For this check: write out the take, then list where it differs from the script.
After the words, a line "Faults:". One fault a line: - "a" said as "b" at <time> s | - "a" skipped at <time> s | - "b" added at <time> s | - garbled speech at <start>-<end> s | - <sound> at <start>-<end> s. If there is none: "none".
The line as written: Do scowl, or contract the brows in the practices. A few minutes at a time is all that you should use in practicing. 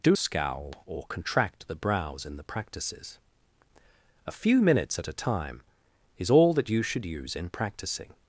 Do scowl, or contract the brows in the practices. A few minutes at a time is all that you should use in practicing.
Faults:
none